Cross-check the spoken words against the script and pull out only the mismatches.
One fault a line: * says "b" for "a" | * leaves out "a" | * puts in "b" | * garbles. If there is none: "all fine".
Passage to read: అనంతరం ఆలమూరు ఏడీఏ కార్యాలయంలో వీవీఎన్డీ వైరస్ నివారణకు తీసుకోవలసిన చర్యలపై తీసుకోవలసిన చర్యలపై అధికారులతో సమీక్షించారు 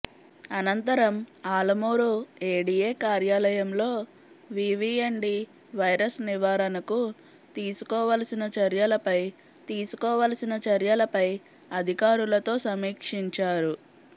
all fine